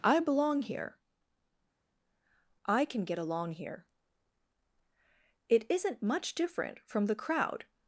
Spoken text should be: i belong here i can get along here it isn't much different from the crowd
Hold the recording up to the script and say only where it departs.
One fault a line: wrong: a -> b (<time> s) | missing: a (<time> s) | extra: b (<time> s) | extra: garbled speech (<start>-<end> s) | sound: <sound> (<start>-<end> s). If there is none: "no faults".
no faults